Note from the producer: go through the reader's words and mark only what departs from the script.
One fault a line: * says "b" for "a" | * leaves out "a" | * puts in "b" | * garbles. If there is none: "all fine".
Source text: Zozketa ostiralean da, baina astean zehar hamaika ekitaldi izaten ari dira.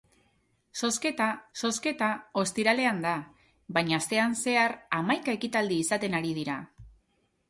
* puts in "zozketa"